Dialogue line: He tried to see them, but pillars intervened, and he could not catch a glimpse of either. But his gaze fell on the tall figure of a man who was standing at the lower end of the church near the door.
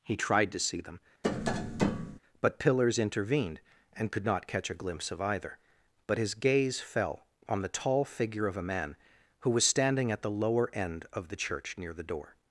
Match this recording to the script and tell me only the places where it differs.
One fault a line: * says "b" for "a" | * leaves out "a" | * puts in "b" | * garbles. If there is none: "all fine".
* leaves out "he"